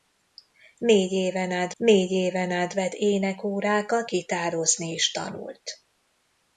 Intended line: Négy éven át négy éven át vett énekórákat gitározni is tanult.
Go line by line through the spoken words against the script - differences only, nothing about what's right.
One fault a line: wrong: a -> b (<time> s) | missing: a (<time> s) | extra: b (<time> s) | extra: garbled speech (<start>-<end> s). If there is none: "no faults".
no faults